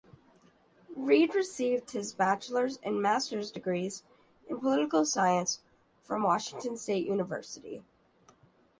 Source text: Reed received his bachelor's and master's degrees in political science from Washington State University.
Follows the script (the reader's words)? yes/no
yes